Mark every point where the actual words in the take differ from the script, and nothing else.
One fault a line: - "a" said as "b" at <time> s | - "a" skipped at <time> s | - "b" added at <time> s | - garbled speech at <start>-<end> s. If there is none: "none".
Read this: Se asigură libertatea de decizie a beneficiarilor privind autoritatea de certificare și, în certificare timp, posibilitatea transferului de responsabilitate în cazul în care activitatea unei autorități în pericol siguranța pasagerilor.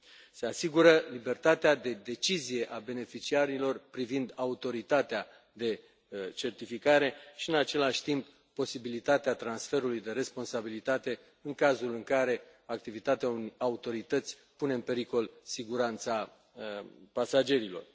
- "certificare" said as "același" at 7.5 s
- "pune" added at 14.6 s